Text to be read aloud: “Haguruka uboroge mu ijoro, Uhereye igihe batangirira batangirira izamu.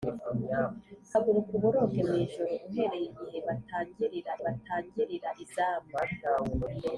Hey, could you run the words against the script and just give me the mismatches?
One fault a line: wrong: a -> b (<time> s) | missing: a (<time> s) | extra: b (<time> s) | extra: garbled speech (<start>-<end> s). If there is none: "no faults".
no faults